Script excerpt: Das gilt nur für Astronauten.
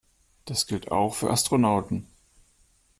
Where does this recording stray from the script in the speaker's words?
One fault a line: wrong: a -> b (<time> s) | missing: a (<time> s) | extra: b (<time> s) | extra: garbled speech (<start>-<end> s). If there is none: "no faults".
wrong: nur -> auch (0.9 s)